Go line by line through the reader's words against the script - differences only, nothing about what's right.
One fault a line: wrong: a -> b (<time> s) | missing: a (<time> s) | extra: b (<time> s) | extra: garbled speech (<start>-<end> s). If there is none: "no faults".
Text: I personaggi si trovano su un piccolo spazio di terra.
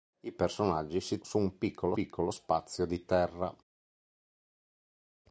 missing: trovano (1.2 s)
extra: piccolo (1.9 s)